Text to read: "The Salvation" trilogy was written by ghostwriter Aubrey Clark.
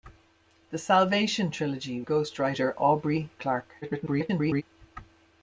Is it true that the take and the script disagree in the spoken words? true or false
true